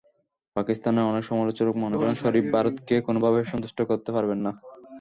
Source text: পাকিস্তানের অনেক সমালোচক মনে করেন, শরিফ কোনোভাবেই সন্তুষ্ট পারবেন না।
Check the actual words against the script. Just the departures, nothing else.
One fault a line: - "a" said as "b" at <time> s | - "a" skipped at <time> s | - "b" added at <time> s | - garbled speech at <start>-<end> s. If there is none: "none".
- "ভারতকে" added at 2.5 s
- "করতে" added at 3.9 s